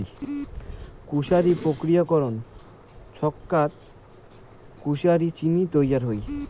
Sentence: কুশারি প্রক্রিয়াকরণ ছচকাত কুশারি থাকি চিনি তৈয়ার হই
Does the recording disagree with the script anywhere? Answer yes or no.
yes